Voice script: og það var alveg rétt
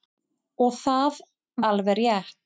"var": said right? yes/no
no